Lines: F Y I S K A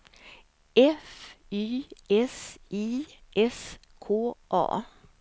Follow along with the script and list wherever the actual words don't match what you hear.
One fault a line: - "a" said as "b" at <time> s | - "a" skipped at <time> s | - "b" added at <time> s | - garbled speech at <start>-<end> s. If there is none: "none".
- "S" added at 2.1 s